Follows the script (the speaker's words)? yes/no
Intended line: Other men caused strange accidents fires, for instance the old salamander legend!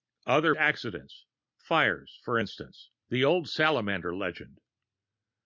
no